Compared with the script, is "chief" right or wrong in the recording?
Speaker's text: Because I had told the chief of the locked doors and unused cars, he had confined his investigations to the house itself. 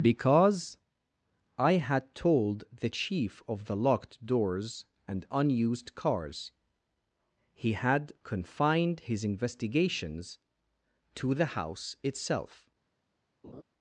right